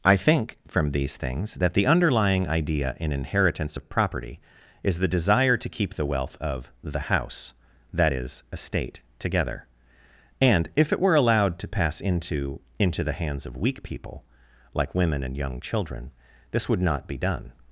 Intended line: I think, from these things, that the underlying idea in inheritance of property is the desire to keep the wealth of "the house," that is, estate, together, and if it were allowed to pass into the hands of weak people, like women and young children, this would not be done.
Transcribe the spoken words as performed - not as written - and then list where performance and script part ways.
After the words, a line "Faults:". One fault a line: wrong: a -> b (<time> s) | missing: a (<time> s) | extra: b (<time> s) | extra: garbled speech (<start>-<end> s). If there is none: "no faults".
I think, from these things, that the underlying idea in inheritance of property is the desire to keep the wealth of "the house," that is, estate, together, and if it were allowed to pass into into the hands of weak people, like women and young children, this would not be done.
Faults:
extra: into (12.8 s)